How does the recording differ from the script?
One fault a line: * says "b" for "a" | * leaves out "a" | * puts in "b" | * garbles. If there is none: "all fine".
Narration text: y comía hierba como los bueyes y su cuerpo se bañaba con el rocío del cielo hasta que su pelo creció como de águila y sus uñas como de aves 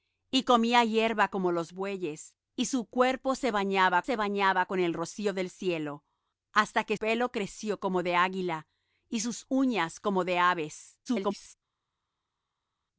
* puts in "se bañaba"
* leaves out "su"
* garbles